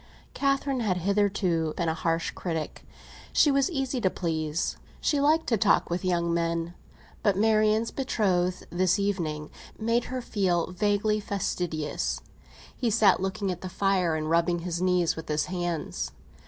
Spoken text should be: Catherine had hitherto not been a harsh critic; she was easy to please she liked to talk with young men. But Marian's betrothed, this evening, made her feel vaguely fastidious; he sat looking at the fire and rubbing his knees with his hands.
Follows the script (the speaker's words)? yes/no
no